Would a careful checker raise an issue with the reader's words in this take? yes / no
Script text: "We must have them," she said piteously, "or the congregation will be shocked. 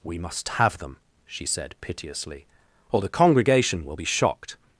no